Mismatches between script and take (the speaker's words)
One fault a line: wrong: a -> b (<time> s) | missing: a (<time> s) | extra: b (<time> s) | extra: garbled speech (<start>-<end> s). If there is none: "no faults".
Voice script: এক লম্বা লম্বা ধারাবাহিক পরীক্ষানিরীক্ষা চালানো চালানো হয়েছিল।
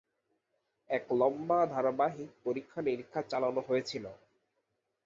missing: লম্বা (1.6 s)
missing: চালানো (3.6 s)